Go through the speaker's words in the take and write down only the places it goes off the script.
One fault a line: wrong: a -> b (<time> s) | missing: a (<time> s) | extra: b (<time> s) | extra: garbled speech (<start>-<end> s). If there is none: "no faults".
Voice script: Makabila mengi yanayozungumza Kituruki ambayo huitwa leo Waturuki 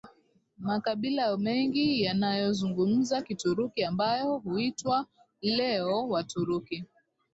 no faults